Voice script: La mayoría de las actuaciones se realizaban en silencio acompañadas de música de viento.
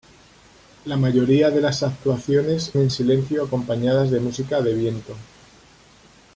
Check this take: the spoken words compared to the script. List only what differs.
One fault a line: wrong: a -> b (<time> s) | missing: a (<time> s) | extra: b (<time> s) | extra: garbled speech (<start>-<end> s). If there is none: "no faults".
missing: se realizaban (2.7 s)